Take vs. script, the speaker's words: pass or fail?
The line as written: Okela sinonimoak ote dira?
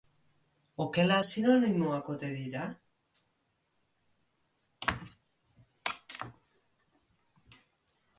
pass